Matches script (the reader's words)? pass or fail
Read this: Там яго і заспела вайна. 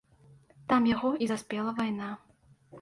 pass